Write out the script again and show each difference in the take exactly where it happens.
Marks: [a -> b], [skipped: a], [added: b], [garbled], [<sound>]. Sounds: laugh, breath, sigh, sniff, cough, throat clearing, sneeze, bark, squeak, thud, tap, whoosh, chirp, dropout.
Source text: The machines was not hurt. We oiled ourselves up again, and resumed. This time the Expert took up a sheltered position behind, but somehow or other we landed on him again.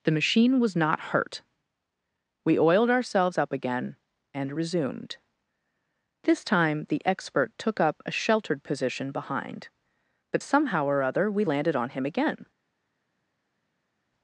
The [machines -> machine] was not hurt. We oiled ourselves up again, and resumed. This time the Expert took up a sheltered position behind, but somehow or other we landed on him again.